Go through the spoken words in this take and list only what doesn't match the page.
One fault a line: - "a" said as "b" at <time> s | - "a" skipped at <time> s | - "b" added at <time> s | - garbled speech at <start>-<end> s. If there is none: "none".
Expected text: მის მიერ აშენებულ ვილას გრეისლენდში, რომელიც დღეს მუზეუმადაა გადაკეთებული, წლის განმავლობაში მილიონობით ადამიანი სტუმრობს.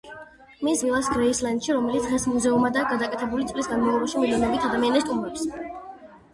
- "მიერ აშენებულ" skipped at 0.8 s